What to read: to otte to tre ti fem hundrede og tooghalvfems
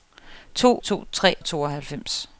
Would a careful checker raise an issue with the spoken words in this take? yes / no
yes